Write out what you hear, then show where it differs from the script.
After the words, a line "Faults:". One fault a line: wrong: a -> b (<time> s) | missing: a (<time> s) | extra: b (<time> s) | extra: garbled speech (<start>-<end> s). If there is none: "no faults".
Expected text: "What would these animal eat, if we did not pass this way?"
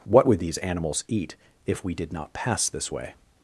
"What would these animals eat, if we did not pass this way?"
Faults:
wrong: animal -> animals (0.6 s)